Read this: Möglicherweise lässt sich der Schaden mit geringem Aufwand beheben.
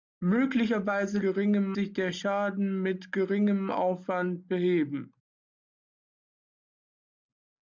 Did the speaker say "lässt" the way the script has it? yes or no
no